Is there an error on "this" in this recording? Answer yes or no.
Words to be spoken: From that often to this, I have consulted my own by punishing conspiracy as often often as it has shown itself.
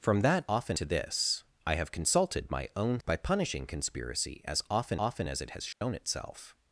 no